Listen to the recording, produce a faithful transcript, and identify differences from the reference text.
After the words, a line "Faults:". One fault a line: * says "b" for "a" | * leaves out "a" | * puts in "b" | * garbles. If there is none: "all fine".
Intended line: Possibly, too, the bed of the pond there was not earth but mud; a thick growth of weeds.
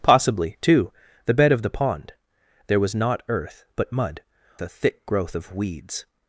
Possibly, too, the bed of the pond there was not earth but mud; a thick growth of weeds.
Faults:
all fine